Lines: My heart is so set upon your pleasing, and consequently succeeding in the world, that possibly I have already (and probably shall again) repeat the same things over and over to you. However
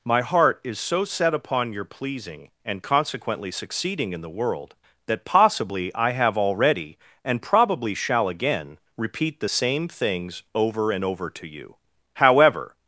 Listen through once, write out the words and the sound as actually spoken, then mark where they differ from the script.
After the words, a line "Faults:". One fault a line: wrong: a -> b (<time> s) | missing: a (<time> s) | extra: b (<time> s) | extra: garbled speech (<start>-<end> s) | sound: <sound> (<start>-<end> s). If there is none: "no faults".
My heart is so set upon your pleasing, and consequently succeeding in the world, that possibly I have already (and probably shall again) repeat the same things over and over to you. However
Faults:
no faults